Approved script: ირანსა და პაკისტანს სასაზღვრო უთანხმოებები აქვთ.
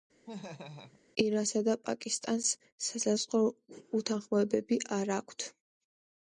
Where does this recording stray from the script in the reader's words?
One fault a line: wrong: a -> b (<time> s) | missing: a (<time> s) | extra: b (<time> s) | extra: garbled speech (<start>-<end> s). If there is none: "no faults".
extra: არ (5.0 s)